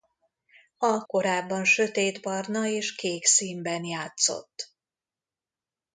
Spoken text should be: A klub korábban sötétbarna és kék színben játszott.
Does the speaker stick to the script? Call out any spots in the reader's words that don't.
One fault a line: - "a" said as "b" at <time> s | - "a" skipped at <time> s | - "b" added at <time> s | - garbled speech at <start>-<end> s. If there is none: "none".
- "klub" skipped at 1.0 s